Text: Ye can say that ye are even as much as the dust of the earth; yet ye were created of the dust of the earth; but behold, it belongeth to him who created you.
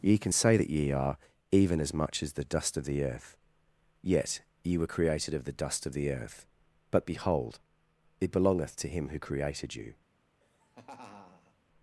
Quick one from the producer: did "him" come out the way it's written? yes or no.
yes